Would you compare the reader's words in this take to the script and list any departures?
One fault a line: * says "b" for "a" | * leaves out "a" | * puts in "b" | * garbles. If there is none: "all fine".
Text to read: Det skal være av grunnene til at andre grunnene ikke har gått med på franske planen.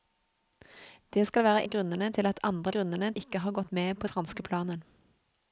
all fine